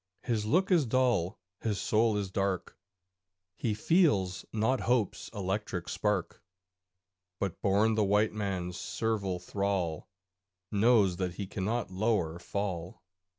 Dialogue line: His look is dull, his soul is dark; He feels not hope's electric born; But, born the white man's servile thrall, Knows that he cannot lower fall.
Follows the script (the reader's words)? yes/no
no